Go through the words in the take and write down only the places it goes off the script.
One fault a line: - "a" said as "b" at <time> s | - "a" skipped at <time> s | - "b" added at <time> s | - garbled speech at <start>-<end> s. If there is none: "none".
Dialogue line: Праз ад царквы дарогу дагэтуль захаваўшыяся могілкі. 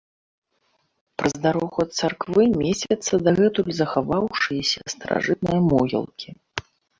- "дарогу" added at 1.4 s
- "дарогу" said as "месцяцца" at 2.6 s
- "старажытныя" added at 4.9 s